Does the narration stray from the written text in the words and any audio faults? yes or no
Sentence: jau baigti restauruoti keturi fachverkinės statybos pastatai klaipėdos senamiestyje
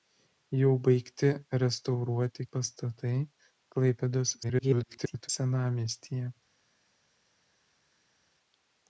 yes